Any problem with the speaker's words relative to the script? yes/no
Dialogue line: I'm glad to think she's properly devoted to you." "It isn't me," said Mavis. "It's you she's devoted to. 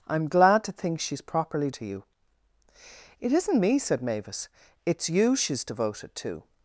yes